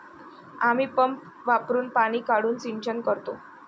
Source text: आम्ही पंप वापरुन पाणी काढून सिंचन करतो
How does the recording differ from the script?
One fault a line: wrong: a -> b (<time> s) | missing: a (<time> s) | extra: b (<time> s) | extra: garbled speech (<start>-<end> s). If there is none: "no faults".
no faults